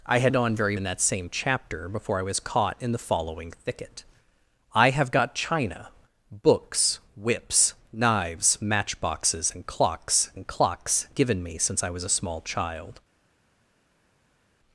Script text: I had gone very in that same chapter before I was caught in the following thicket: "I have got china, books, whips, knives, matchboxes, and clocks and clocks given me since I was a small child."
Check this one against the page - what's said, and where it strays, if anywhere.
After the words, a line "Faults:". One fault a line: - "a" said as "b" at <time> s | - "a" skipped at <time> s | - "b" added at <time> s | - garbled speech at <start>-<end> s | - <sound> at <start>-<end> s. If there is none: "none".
I had gone very in that same chapter before I was caught in the following thicket: "I have got china, books, whips, knives, matchboxes, and clocks and clocks given me since I was a small child."
Faults:
none